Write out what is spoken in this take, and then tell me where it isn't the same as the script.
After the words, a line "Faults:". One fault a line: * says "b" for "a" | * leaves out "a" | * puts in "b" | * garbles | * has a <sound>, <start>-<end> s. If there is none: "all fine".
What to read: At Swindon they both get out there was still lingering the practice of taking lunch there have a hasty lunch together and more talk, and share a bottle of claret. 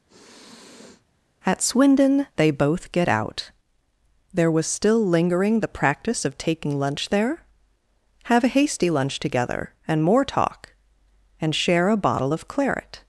At Swindon they both get out there was still lingering the practice of taking lunch there have a hasty lunch together and more talk, and share a bottle of claret.
Faults:
* has a sniff, 0.1-1.0 s